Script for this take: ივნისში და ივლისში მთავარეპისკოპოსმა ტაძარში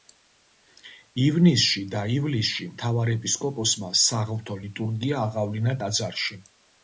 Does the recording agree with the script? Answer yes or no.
no